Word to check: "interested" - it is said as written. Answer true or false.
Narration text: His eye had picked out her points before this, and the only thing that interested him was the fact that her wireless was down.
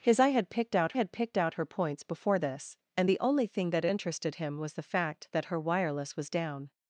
true